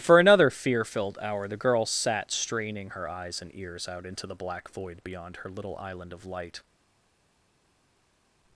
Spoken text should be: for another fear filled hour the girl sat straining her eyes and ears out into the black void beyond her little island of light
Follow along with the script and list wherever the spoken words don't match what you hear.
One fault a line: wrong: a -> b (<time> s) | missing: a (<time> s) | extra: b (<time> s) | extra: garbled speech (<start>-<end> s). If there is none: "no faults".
no faults